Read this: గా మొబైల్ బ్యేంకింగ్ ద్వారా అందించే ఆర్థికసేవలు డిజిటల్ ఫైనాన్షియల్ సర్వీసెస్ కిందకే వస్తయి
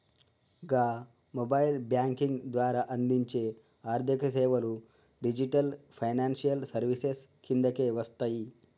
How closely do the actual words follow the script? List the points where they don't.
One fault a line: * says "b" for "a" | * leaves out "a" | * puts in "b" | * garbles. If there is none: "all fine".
all fine